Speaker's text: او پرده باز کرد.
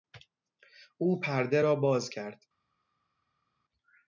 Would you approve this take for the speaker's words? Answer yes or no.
no